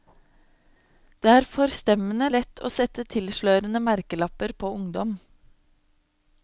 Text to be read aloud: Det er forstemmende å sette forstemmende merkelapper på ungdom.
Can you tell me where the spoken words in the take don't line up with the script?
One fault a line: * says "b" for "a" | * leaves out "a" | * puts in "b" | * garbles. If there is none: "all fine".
* puts in "lett"
* says "tilslørende" for "forstemmende"